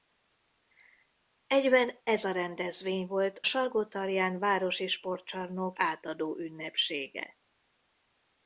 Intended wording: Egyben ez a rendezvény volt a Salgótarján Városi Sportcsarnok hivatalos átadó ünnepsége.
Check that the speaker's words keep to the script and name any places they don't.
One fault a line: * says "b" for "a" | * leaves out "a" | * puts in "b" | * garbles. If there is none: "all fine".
* leaves out "a"
* leaves out "hivatalos"